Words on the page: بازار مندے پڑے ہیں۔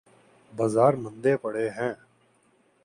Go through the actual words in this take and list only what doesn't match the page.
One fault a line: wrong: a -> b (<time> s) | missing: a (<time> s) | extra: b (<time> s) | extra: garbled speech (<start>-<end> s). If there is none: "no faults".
no faults